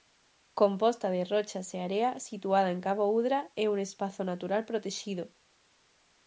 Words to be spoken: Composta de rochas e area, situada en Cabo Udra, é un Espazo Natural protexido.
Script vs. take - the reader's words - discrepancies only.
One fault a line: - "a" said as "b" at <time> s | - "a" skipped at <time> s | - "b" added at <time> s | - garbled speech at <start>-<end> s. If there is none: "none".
none